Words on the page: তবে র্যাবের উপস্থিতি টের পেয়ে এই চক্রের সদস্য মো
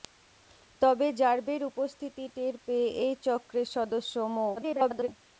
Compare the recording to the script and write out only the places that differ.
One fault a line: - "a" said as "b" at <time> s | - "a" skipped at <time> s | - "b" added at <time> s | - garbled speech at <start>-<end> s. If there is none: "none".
- garbled speech at 4.6-5.1 s